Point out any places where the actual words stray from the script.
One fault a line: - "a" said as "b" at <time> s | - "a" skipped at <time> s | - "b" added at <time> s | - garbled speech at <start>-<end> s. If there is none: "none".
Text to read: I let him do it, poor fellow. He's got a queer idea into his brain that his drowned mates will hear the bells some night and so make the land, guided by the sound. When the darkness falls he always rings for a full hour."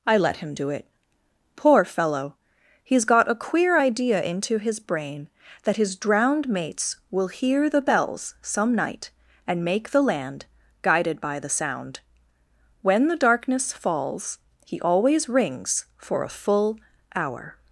- "so" skipped at 9.6 s